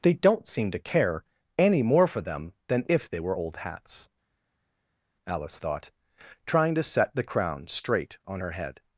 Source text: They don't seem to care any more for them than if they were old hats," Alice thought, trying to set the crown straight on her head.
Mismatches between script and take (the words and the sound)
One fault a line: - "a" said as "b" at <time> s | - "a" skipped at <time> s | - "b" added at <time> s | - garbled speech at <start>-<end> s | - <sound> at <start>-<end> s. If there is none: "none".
none